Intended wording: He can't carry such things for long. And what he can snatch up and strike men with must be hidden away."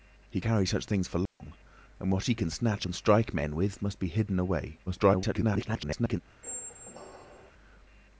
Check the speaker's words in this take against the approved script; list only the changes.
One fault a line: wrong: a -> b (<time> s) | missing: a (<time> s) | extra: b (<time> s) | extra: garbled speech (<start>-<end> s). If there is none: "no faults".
missing: can't (0.4 s)
missing: up (2.9 s)
extra: garbled speech (4.9-6.2 s)